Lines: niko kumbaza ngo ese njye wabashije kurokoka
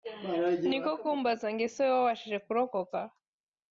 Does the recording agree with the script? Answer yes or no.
no